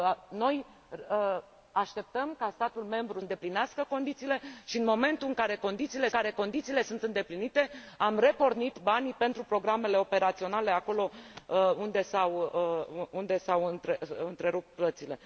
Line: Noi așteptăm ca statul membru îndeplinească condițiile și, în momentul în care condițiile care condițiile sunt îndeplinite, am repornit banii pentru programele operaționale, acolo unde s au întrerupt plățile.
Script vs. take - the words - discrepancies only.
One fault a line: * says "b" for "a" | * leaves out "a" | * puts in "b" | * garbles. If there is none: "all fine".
all fine